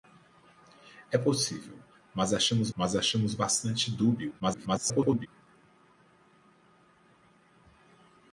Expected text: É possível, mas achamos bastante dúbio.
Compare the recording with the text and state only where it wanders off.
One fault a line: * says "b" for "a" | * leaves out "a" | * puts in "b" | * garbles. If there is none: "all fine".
* puts in "mas achamos"
* garbles